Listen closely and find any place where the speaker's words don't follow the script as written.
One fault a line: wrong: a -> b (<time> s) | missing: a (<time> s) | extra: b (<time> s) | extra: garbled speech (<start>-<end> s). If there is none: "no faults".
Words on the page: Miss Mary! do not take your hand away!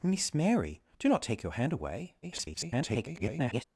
extra: garbled speech (2.2-3.6 s)